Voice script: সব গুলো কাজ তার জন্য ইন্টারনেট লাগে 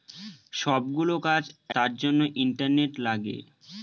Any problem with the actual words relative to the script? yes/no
no